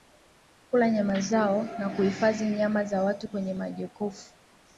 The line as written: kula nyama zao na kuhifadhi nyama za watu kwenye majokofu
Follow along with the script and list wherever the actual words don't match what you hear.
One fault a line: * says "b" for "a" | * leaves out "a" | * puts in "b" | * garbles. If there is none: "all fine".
all fine